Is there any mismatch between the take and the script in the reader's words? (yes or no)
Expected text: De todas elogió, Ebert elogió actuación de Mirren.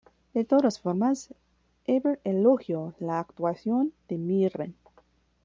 yes